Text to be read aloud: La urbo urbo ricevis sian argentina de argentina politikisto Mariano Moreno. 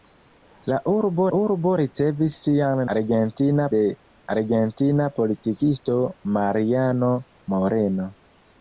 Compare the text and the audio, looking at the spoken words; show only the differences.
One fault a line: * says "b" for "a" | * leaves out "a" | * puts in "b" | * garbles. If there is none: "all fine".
all fine